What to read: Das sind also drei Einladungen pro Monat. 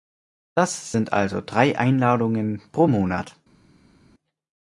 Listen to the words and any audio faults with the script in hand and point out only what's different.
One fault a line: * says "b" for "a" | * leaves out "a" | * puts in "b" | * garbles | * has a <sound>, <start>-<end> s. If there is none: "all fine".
all fine